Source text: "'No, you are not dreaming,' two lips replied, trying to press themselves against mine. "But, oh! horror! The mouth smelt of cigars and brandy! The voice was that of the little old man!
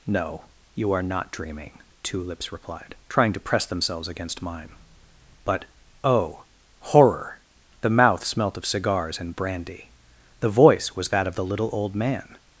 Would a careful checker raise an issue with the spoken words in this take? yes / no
no